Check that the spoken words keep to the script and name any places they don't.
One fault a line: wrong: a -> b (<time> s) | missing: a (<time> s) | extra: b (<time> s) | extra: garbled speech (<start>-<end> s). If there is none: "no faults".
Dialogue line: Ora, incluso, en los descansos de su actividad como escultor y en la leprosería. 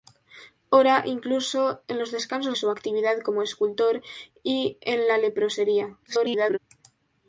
missing: de (2.6 s)
extra: garbled speech (6.1-6.6 s)